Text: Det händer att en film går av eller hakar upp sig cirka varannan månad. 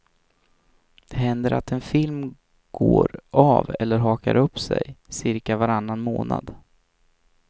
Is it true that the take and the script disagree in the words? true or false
false